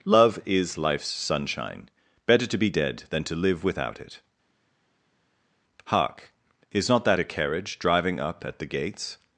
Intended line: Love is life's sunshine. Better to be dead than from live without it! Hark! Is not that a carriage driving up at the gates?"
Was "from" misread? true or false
true